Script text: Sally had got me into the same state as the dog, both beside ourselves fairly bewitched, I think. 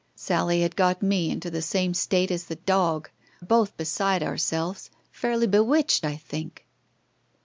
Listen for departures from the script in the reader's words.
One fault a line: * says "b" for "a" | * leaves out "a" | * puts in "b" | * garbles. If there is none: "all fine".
all fine